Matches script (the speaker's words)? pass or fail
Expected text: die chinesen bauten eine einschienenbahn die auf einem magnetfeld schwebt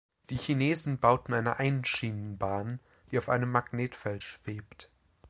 pass